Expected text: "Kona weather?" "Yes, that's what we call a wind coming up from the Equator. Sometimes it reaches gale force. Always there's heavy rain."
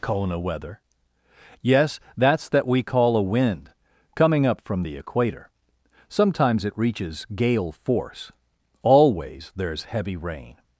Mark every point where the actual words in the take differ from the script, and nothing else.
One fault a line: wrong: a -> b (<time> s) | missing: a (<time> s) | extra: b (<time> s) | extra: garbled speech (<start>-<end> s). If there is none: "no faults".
wrong: what -> that (2.5 s)